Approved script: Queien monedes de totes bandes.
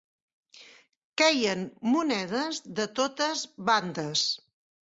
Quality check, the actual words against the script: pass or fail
pass